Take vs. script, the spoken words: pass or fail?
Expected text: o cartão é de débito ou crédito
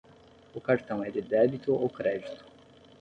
pass